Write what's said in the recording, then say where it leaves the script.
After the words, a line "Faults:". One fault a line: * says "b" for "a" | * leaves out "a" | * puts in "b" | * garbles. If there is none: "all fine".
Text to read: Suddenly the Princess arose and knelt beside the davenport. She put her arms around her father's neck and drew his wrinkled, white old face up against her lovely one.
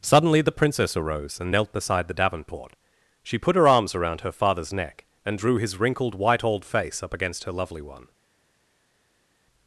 Suddenly the Princess arose and knelt beside the davenport. She put her arms around her father's neck and drew his wrinkled, white old face up against her lovely one.
Faults:
all fine